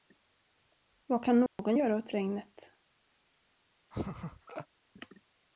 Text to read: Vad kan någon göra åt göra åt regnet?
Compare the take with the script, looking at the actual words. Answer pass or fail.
fail